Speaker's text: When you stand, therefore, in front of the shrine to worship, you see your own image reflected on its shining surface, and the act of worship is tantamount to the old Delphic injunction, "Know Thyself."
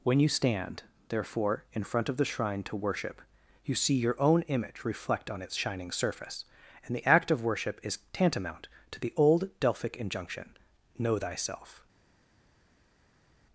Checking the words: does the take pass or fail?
fail